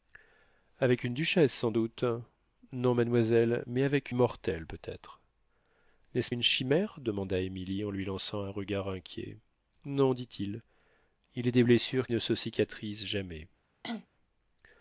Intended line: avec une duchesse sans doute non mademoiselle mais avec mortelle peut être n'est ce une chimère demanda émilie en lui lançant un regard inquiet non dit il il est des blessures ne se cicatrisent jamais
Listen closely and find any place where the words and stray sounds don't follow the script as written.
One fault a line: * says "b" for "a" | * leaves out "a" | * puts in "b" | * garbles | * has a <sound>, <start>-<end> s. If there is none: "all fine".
* has a cough, 13.8-14.1 s